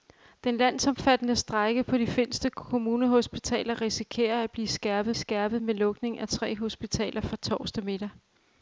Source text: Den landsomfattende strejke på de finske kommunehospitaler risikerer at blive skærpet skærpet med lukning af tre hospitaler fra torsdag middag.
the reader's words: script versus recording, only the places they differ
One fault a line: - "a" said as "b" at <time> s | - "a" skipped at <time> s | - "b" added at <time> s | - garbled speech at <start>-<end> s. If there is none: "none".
none